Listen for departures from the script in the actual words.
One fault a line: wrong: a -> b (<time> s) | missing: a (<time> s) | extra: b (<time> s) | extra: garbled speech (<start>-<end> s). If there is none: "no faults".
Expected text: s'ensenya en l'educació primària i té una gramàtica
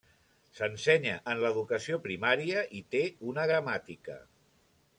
no faults